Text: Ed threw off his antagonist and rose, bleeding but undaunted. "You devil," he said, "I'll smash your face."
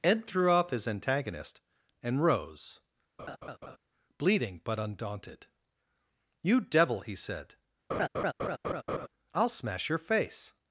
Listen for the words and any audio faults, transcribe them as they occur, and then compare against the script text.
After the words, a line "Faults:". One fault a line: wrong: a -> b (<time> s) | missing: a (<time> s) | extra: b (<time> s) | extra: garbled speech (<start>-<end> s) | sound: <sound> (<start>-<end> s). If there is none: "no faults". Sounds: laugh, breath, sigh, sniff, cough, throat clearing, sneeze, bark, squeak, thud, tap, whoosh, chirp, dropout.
Ed threw off his antagonist and rose, bleeding but undaunted. "You devil," he said, "I'll smash your face."
Faults:
sound: laugh (3.2-3.8 s)
sound: laugh (7.9-9.1 s)